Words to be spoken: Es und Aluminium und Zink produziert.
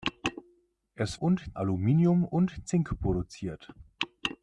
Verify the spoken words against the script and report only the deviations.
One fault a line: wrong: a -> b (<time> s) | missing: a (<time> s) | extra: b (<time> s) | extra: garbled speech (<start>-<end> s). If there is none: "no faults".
no faults